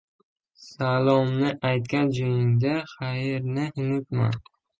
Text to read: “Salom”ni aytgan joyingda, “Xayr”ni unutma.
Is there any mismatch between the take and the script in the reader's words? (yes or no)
no